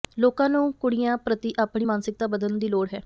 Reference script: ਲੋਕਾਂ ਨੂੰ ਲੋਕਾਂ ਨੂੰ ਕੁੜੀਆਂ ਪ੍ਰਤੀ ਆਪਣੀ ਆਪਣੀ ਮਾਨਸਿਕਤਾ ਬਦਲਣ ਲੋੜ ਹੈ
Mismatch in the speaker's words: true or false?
true